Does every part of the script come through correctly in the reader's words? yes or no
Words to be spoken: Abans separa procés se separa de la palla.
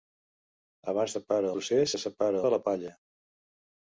yes